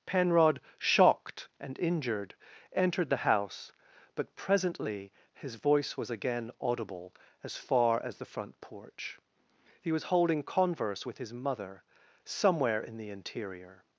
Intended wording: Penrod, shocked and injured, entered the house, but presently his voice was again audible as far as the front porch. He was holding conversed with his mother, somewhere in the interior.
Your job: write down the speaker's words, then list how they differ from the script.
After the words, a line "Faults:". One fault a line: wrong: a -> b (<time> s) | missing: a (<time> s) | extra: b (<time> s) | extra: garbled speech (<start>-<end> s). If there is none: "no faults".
Penrod, shocked and injured, entered the house, but presently his voice was again audible as far as the front porch. He was holding converse with his mother, somewhere in the interior.
Faults:
wrong: conversed -> converse (10.4 s)